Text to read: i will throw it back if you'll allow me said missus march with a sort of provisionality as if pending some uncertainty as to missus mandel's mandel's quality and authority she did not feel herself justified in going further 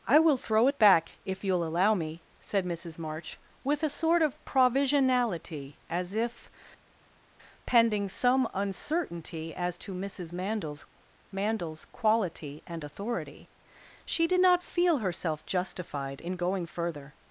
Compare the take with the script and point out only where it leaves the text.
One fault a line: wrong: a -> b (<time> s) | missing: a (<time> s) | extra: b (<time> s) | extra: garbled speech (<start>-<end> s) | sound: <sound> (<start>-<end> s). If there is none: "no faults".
no faults